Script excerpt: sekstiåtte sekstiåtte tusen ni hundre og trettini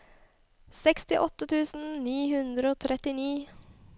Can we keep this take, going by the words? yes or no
no